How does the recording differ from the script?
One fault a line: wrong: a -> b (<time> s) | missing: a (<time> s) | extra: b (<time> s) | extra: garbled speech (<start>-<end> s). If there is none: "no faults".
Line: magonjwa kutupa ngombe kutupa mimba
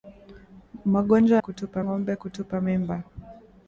no faults